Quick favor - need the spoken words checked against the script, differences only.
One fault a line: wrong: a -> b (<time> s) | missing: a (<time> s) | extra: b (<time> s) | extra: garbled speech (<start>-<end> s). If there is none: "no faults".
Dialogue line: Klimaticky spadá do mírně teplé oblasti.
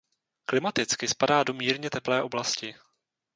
no faults